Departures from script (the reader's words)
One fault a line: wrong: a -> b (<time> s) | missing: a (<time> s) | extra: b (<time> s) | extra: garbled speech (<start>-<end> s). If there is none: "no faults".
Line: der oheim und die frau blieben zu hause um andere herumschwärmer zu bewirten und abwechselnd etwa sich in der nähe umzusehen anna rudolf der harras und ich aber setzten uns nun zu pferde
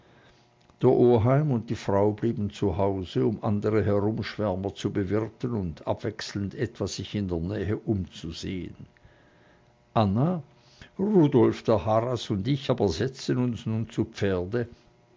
no faults